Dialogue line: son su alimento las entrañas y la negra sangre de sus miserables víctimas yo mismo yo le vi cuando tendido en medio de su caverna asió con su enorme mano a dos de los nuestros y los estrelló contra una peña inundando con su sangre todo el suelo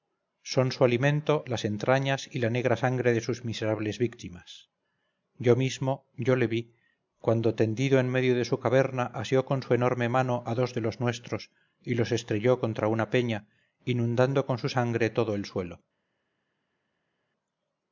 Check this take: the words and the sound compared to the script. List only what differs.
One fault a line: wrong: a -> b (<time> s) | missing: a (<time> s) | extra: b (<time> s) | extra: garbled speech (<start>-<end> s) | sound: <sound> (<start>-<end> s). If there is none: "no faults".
no faults